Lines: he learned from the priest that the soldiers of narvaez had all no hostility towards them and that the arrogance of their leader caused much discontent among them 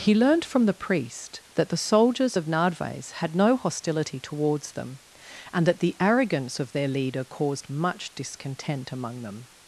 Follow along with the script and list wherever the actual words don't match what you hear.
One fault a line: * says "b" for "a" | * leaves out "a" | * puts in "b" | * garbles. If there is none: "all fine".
* leaves out "all"